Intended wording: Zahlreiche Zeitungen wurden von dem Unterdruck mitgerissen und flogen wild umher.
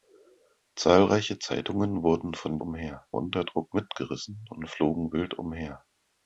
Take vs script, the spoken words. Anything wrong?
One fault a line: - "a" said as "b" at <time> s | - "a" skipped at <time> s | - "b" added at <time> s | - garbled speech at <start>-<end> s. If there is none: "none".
- "dem" said as "umher" at 2.6 s